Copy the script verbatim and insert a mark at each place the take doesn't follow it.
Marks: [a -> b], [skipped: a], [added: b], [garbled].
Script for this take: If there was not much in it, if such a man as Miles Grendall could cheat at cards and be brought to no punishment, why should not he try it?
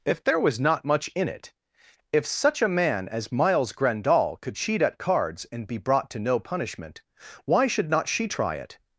If there was not much in it, if such a man as Miles Grendall could cheat at cards and be brought to no punishment, why should not [he -> she] try it?